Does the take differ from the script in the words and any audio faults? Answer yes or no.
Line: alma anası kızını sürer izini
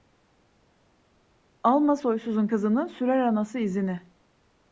yes